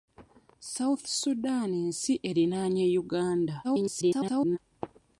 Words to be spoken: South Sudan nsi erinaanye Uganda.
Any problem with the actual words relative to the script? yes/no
yes